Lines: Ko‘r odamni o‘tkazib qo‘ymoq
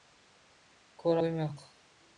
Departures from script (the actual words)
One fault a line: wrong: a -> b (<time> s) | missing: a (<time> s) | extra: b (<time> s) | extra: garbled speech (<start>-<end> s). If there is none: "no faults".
missing: odamni o‘tkazib (1.2 s)